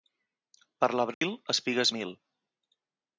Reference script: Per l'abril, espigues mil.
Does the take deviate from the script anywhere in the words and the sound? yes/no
yes